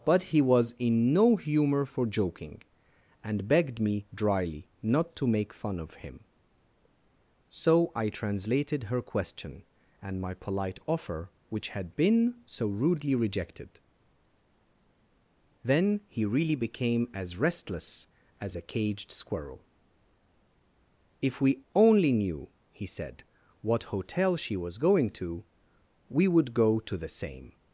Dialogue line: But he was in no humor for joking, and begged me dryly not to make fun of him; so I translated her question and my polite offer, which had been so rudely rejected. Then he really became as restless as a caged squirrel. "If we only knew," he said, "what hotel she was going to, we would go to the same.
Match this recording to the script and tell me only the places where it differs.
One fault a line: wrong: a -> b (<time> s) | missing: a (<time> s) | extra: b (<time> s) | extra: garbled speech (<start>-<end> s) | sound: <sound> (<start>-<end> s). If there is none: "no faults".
no faults